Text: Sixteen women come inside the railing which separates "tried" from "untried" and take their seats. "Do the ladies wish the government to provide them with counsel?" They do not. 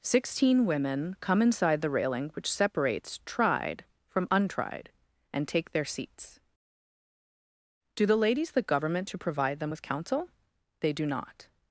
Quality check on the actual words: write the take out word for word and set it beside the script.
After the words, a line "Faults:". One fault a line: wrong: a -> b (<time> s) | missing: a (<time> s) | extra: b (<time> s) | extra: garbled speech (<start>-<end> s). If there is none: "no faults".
Sixteen women come inside the railing which separates "tried" from "untried" and take their seats. "Do the ladies the government to provide them with counsel?" They do not.
Faults:
missing: wish (8.5 s)